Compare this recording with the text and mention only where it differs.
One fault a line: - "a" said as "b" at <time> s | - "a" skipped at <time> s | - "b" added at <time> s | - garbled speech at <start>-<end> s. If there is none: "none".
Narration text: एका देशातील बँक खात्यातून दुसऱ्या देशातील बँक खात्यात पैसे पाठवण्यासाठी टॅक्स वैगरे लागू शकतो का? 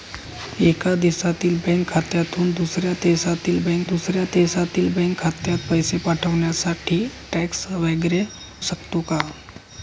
- "दुसऱ्या देशातील बँक" added at 3.9 s
- "लागू" skipped at 8.2 s